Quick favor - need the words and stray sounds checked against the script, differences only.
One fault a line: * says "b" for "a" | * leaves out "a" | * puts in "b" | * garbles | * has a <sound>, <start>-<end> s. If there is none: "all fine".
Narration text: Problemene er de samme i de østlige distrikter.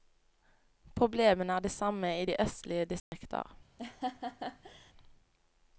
* has a dropout, 3.0-3.1 s
* has a laugh, 3.8-4.9 s